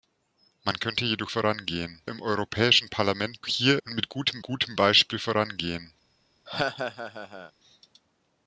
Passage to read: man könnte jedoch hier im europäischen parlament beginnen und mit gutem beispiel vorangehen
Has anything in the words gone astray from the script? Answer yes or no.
yes